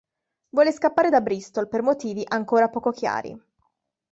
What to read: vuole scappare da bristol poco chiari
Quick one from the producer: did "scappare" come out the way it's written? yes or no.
yes